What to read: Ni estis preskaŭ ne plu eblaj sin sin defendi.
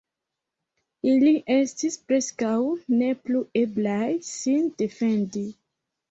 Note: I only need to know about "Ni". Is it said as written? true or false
false